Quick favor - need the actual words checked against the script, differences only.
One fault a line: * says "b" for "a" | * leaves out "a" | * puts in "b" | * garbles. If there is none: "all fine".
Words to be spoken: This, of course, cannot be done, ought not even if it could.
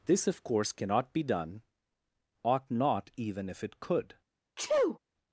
all fine